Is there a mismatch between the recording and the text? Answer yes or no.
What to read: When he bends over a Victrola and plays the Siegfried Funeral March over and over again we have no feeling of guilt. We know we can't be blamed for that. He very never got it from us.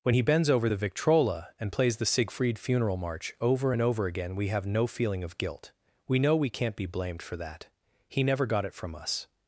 yes